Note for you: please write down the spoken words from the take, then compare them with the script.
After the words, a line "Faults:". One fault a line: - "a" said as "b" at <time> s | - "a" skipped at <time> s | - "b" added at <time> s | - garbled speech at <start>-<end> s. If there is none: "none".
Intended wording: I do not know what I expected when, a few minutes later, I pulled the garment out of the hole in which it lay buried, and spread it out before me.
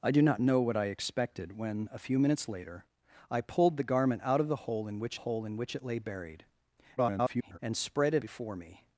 I do not know what I expected when, a few minutes later, I pulled the garment out of the hole in which hole in which it lay buried, [garbled] and spread it before me.
Faults:
- "hole in which" added at 5.1 s
- garbled speech at 7.0-7.6 s
- "out" skipped at 8.2 s